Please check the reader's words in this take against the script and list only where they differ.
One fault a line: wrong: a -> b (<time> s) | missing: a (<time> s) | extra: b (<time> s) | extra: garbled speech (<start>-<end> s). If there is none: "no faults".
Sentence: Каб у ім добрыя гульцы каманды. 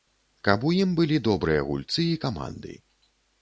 extra: былі (1.0 s)
extra: і (2.1 s)